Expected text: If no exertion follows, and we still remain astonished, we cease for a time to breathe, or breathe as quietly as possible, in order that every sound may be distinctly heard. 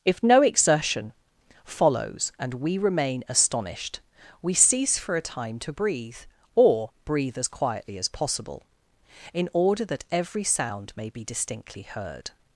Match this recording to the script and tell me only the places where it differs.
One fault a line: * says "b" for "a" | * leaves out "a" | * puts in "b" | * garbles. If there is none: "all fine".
* leaves out "still"